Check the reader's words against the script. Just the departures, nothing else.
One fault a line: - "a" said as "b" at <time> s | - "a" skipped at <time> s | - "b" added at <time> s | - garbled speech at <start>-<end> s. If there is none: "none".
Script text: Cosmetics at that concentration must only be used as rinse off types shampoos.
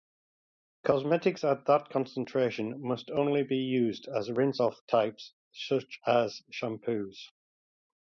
- "such as" added at 5.5 s